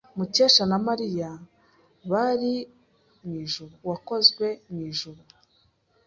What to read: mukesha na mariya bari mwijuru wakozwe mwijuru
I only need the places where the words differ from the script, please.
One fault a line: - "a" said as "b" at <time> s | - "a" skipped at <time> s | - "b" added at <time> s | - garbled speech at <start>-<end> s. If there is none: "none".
none